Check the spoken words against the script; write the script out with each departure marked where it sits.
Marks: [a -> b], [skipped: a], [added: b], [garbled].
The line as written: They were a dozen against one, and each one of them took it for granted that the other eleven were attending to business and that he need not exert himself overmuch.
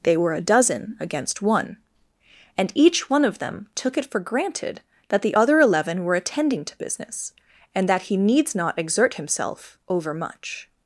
They were a dozen against one, and each one of them took it for granted that the other eleven were attending to business and that he [need -> needs] not exert himself overmuch.